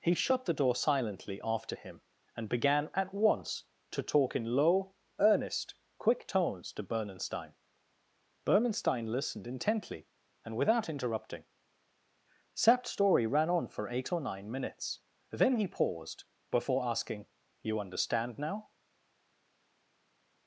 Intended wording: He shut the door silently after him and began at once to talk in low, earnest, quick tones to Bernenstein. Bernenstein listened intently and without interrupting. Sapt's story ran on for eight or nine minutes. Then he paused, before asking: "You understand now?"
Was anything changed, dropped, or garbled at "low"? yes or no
no